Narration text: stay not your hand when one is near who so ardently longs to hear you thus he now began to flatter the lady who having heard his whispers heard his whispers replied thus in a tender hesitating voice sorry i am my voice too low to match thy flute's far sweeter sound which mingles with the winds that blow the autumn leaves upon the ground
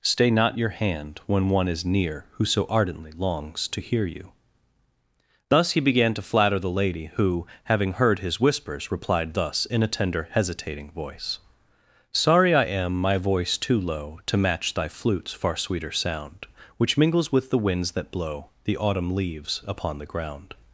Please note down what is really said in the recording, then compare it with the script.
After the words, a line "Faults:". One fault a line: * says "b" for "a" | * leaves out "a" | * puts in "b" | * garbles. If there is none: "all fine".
stay not your hand when one is near who so ardently longs to hear you thus he began to flatter the lady who having heard his whispers replied thus in a tender hesitating voice sorry i am my voice too low to match thy flute's far sweeter sound which mingles with the winds that blow the autumn leaves upon the ground
Faults:
* leaves out "now"
* leaves out "heard his whispers"